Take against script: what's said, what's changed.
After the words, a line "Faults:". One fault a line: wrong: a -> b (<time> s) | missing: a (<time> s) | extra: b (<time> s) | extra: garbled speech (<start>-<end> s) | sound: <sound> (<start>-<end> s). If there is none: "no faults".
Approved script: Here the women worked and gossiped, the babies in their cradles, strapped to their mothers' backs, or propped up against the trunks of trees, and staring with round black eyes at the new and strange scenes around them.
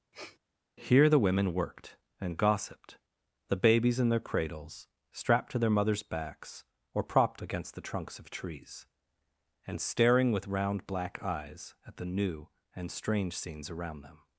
Here the women worked and gossiped, the babies in their cradles, strapped to their mothers' backs, or propped against the trunks of trees, and staring with round black eyes at the new and strange scenes around them.
Faults:
sound: sniff (0.1-0.4 s)
missing: up (7.4 s)